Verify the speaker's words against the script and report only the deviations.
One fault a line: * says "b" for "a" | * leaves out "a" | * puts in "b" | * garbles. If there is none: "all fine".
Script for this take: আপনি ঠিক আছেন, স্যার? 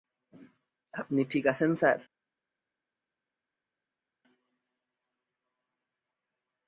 all fine